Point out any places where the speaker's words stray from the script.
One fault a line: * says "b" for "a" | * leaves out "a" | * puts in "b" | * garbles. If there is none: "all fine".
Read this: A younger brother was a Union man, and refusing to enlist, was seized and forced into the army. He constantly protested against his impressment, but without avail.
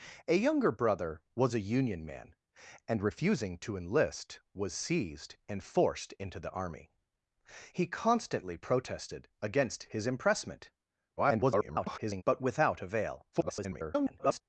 * garbles
* garbles